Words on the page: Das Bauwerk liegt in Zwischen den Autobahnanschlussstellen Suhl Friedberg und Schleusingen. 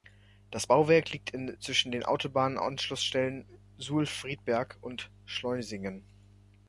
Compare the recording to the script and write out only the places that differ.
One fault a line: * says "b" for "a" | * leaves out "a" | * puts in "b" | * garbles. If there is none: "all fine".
all fine